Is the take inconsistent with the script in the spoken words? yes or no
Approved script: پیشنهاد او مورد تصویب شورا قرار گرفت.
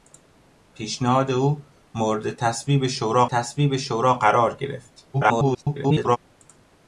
yes